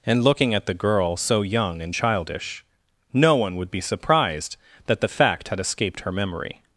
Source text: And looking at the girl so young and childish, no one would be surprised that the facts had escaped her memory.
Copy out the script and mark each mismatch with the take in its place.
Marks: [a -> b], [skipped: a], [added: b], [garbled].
And looking at the girl so young and childish, no one would be surprised that the [facts -> fact] had escaped her memory.